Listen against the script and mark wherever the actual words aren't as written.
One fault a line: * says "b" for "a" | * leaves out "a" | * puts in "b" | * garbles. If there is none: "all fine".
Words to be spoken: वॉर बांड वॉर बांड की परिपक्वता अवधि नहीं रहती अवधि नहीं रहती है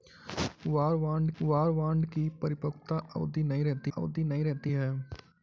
all fine